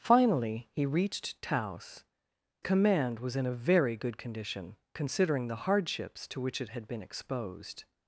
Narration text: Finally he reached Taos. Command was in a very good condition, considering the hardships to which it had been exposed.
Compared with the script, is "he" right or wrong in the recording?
right